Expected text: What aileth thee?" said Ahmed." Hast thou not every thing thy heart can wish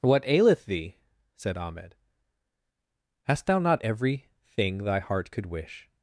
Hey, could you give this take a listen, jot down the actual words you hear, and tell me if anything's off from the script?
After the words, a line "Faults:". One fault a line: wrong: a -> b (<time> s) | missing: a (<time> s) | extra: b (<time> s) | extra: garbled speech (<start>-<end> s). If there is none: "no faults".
What aileth thee?" said Ahmed." Hast thou not every thing thy heart could wish
Faults:
wrong: can -> could (5.3 s)